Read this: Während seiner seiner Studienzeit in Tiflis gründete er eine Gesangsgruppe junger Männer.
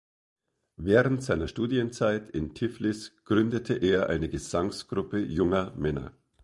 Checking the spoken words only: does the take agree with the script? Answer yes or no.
no